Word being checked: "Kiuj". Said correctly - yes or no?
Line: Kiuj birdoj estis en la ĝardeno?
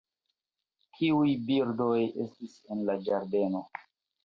yes